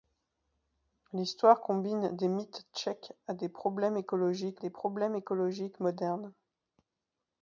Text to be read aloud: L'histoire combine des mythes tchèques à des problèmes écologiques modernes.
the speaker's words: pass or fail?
fail